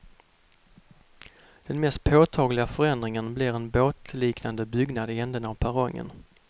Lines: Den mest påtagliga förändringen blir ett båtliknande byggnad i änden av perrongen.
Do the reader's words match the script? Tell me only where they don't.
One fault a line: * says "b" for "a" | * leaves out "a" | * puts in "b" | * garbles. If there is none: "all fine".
* says "en" for "ett"